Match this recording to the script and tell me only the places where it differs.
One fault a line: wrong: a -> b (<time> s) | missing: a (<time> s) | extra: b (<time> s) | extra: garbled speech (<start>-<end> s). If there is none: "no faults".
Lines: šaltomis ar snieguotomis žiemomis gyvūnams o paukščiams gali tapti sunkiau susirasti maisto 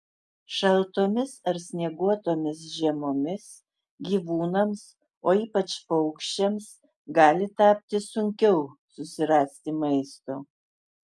extra: ypač (5.4 s)